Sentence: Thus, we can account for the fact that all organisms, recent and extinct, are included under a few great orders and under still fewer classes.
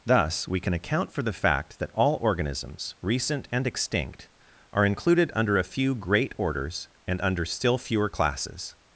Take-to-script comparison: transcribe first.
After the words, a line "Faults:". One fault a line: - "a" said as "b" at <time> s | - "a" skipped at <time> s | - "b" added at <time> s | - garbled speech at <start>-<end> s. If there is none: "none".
Thus, we can account for the fact that all organisms, recent and extinct, are included under a few great orders and under still fewer classes.
Faults:
none